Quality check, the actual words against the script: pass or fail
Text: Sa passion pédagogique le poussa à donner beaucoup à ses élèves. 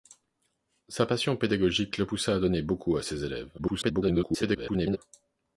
fail